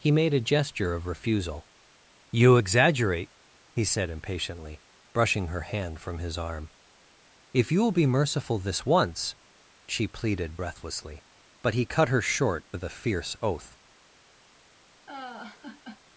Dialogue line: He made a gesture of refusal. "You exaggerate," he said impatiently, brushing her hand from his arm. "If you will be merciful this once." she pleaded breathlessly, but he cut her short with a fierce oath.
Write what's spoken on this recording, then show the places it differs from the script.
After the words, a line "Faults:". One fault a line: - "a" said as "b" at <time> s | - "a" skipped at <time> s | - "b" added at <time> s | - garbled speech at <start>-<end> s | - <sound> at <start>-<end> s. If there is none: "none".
He made a gesture of refusal. "You exaggerate," he said impatiently, brushing her hand from his arm. "If you will be merciful this once." she pleaded breathlessly, but he cut her short with a fierce oath.
Faults:
- laugh at 15.1-16.0 s